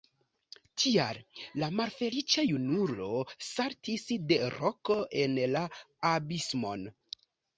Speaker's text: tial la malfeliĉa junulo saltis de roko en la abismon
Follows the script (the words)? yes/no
yes